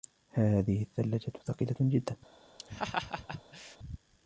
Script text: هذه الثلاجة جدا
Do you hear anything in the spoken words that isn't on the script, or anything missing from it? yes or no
yes